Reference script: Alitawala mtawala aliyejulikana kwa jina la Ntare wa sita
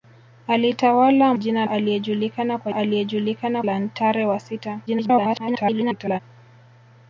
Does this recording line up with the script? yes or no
no